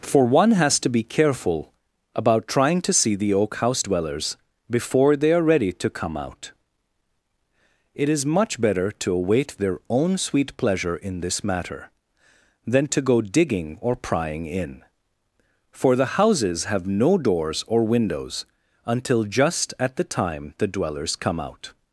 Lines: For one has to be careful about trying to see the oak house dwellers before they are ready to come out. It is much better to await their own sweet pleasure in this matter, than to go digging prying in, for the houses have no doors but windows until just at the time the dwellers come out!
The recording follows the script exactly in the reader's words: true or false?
false